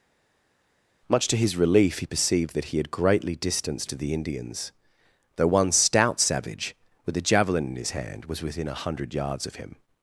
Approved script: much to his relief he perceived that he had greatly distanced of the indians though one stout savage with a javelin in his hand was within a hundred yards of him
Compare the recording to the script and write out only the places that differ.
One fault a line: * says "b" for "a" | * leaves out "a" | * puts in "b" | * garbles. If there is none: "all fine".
all fine